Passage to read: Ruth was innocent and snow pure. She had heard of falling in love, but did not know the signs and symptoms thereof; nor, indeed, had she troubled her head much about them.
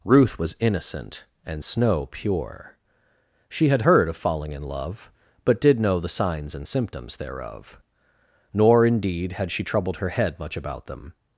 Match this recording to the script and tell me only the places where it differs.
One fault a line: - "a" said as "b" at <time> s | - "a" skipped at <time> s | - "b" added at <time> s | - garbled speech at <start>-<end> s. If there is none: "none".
- "not" skipped at 5.8 s